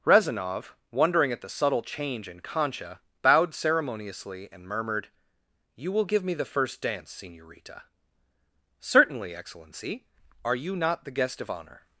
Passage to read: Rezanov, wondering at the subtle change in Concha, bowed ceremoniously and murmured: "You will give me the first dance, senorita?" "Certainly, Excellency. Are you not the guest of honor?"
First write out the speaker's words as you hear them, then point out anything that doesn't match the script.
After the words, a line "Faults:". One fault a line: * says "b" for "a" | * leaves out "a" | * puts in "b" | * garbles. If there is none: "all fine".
Rezanov, wondering at the subtle change in Concha, bowed ceremoniously and murmured: "You will give me the first dance, senorita?" "Certainly, Excellency. Are you not the guest of honor?"
Faults:
all fine